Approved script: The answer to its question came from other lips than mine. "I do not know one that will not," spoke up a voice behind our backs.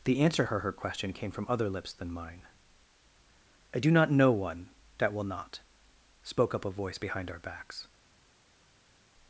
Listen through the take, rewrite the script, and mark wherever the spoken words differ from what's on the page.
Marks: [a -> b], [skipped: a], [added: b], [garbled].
The answer to [its -> her] question came from other lips than mine. "I do not know one that will not," spoke up a voice behind our backs.